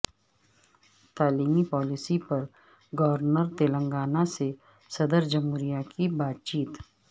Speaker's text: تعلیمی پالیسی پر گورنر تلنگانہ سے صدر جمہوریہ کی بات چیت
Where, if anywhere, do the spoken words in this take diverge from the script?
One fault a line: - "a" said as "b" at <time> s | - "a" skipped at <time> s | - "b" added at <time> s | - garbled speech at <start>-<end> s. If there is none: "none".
none